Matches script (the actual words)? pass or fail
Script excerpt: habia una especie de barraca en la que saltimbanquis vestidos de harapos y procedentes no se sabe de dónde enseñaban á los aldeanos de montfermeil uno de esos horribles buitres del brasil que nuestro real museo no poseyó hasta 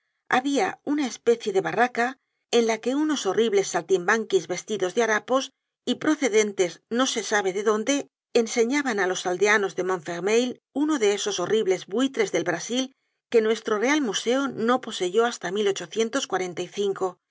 fail